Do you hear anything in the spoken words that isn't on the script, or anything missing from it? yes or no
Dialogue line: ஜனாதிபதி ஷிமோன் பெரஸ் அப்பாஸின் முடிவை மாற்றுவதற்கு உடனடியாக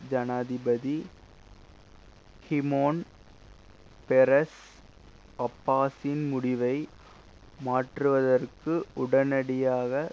no